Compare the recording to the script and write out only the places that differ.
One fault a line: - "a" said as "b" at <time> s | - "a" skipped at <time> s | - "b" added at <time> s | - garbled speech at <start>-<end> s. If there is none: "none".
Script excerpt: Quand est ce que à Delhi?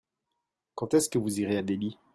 - "vous irez" added at 1.2 s